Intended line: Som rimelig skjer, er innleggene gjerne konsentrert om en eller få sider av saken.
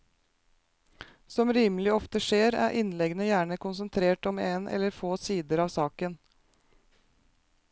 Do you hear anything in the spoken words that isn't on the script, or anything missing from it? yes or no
yes